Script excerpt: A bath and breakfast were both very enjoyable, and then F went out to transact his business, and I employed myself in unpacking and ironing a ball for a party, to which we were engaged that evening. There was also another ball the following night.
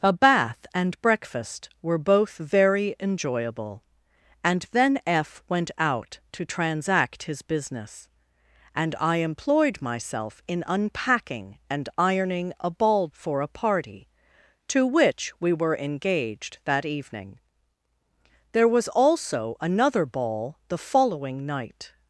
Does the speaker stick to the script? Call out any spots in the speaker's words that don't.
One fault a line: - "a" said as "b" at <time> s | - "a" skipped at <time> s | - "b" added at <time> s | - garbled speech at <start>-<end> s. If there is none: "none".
none